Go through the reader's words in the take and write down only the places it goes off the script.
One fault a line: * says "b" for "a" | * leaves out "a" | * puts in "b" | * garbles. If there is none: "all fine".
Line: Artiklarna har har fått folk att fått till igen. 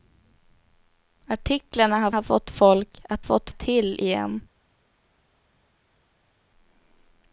all fine